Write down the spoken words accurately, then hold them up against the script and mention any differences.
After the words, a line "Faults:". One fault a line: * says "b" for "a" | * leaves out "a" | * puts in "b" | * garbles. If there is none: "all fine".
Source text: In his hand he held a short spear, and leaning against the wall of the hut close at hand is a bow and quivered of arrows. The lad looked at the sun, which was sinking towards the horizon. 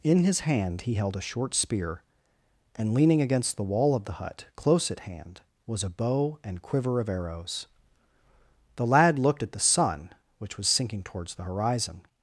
In his hand he held a short spear, and leaning against the wall of the hut close at hand was a bow and quiver of arrows. The lad looked at the sun, which was sinking towards the horizon.
Faults:
* says "was" for "is"
* says "quiver" for "quivered"